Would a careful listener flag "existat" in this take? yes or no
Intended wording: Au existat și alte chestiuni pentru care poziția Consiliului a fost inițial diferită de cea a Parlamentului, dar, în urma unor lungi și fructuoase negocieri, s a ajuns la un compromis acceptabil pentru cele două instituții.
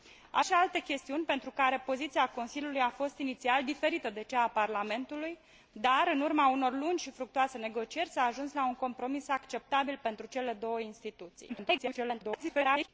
yes